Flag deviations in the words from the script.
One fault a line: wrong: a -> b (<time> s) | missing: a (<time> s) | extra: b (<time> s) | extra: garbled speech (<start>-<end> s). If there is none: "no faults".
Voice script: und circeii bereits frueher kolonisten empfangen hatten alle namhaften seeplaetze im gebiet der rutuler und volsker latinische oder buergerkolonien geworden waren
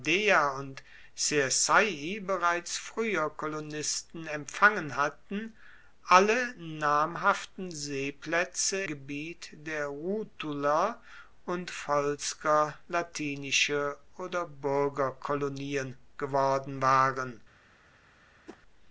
missing: im (8.8 s)